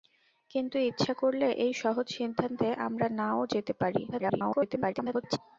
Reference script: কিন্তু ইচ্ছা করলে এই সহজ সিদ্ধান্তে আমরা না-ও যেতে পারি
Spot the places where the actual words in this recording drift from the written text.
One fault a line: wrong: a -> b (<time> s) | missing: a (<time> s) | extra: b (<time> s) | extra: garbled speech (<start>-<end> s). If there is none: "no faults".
extra: garbled speech (4.1-5.4 s)